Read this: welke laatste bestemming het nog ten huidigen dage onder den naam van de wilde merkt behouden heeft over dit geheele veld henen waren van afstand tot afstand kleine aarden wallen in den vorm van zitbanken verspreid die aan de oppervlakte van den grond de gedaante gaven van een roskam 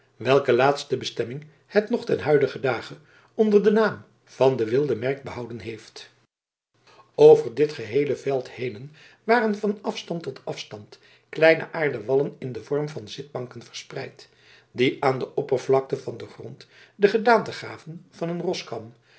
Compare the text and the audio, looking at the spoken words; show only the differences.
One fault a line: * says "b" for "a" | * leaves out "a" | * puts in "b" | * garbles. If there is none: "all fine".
all fine